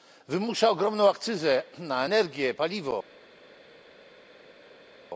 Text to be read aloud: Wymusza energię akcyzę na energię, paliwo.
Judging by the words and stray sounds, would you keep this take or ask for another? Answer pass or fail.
fail